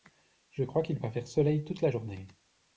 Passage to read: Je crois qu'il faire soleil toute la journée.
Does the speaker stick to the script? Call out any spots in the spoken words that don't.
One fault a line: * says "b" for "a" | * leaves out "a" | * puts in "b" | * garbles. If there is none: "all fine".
* puts in "va"